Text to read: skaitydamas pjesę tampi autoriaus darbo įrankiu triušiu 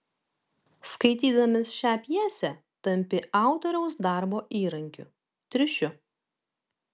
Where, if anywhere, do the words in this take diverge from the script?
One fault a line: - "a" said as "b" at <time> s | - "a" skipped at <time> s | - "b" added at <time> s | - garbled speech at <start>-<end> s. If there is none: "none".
- "šią" added at 1.8 s